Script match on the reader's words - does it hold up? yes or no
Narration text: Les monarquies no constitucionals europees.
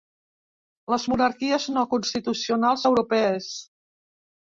yes